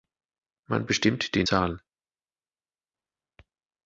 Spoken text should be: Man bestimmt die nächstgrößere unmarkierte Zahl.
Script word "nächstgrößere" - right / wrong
wrong